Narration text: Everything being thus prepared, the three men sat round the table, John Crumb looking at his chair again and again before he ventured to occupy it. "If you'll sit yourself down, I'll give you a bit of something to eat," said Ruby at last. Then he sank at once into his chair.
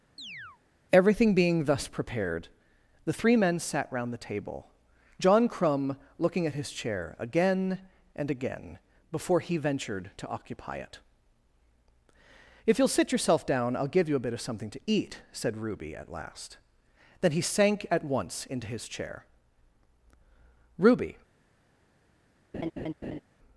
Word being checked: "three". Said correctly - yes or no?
yes